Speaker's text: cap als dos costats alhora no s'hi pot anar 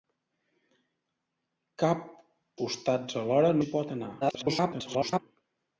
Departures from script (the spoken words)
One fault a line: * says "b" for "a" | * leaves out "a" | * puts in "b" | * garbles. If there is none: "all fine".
* leaves out "als dos"
* leaves out "no"
* garbles